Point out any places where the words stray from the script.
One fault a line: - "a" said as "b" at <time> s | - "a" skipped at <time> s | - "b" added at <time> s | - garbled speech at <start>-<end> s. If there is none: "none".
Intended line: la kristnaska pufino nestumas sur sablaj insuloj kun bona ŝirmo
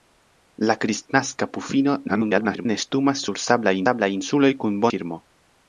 - garbled speech at 2.1-2.7 s
- "sablaj" added at 3.9 s
- "bona" skipped at 4.9 s